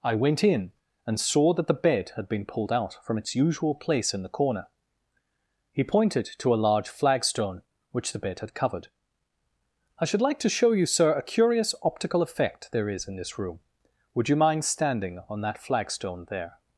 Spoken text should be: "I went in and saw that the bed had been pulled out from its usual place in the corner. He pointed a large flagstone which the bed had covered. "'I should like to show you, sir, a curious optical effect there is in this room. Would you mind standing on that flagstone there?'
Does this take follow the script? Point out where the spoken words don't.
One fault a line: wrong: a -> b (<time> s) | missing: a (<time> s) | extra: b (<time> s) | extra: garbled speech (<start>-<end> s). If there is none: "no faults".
extra: to (6.4 s)